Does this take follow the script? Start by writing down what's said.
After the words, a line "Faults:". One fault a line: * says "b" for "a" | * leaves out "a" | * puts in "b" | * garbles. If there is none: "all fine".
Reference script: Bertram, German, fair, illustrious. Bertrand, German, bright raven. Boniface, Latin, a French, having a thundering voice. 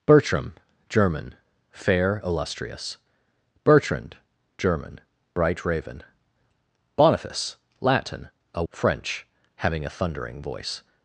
Bertram, German, fair, illustrious. Bertrand, German, bright raven. Boniface, Latin, a French, having a thundering voice.
Faults:
all fine